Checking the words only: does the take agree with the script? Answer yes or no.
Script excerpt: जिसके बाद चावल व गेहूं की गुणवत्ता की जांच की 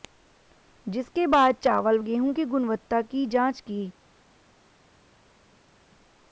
no